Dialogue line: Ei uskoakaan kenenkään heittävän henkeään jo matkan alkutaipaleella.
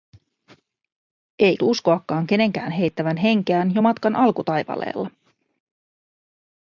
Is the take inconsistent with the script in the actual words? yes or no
no